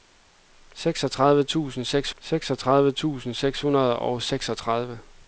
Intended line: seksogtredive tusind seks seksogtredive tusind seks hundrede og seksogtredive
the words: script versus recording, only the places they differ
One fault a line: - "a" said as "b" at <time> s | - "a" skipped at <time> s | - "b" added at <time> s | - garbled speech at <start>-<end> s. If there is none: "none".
none